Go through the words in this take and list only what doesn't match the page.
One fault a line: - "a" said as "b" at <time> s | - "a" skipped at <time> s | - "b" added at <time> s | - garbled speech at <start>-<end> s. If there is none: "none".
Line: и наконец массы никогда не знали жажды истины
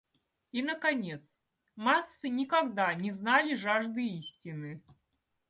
none